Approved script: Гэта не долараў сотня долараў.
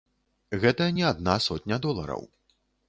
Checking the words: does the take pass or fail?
fail